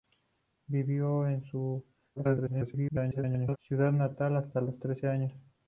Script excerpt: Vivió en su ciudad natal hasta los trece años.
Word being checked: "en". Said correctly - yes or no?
yes